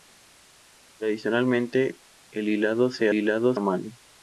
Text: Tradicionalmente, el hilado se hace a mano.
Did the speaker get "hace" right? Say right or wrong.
wrong